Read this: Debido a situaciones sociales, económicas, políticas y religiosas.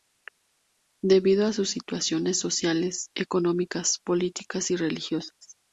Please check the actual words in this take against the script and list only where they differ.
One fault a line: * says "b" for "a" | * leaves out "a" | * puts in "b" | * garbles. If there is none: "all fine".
* puts in "sus"